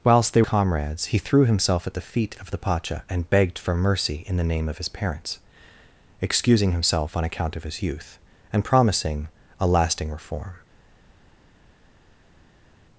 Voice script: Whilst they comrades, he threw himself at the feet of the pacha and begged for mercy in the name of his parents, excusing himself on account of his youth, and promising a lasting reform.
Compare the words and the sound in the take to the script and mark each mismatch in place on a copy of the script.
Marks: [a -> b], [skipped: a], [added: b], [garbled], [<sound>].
Whilst they comrades, he threw himself at the feet of the pacha and begged for mercy in the name of his parents, excusing himself on account of his youth, and promising a lasting reform.